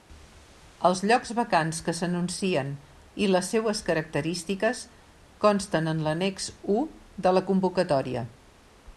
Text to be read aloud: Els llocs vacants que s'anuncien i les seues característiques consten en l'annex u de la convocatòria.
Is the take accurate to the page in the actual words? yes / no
yes